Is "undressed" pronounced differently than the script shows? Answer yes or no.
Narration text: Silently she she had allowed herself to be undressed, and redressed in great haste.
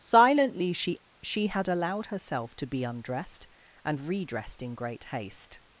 no